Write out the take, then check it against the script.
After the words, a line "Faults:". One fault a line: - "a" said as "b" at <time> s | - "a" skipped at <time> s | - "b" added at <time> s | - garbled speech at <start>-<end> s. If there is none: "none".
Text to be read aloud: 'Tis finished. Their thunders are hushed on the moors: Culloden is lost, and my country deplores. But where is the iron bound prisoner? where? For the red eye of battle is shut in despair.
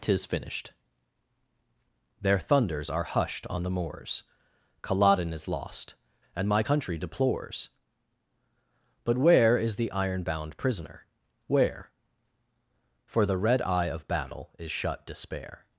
'Tis finished. Their thunders are hushed on the moors: Culloden is lost, and my country deplores. But where is the iron bound prisoner? where? For the red eye of battle is shut despair.
Faults:
- "in" skipped at 15.0 s